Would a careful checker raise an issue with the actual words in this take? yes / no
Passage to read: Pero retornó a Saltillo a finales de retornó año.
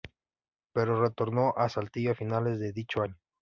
yes